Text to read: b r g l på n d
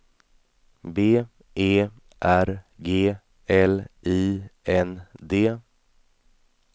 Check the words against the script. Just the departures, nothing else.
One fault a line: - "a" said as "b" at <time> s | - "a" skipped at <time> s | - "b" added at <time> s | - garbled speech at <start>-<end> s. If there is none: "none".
- "e" added at 1.5 s
- "på" said as "i" at 4.0 s